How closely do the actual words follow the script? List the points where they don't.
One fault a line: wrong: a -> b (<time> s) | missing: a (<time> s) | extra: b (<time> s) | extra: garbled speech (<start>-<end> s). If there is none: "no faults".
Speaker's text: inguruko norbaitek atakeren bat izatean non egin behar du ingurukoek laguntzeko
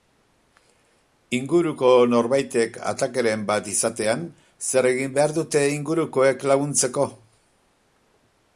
wrong: non -> zer (4.7 s)
wrong: du -> dute (5.4 s)